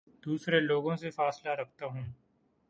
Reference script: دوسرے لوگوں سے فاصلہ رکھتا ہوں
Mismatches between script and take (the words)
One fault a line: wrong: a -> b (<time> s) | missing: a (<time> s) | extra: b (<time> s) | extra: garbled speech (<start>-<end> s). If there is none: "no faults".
no faults